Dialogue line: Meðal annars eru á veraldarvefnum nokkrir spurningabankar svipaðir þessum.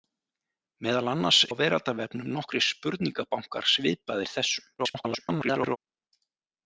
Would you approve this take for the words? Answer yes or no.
no